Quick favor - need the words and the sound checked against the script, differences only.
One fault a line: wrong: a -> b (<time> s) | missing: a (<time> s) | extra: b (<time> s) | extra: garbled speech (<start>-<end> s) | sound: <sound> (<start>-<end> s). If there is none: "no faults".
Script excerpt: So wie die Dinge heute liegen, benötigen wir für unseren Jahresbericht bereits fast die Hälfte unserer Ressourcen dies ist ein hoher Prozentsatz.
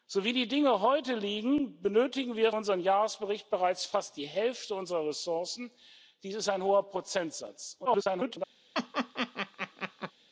missing: für (2.5 s)
extra: garbled speech (7.9-8.4 s)
sound: laugh (8.7-10.1 s)